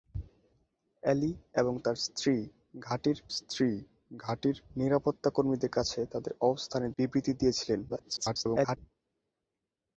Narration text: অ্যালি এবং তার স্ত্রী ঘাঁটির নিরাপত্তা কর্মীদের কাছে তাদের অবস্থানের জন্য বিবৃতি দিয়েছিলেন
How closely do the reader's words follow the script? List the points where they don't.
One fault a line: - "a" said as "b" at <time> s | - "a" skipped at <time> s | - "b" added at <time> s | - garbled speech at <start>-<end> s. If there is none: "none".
- "স্ত্রী ঘাঁটির" added at 3.3 s
- "জন্য" skipped at 6.9 s
- garbled speech at 7.9-8.8 s